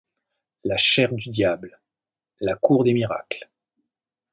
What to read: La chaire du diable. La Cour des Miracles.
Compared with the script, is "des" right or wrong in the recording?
right